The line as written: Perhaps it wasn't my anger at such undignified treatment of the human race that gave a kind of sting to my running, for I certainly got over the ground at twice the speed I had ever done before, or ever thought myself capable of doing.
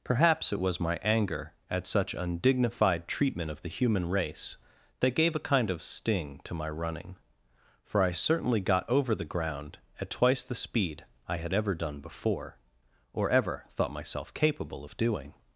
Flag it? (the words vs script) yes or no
yes